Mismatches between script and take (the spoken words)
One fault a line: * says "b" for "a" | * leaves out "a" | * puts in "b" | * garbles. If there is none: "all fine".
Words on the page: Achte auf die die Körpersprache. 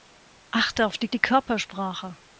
all fine